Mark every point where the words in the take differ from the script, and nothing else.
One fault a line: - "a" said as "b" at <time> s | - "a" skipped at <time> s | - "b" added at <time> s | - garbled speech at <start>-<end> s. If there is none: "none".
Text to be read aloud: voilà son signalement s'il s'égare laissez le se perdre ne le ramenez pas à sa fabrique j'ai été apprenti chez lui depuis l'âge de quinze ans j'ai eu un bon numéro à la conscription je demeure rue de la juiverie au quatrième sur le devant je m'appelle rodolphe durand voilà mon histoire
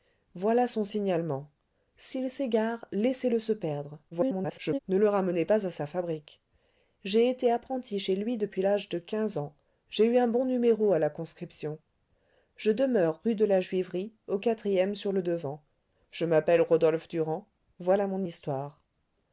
- garbled speech at 4.1-4.8 s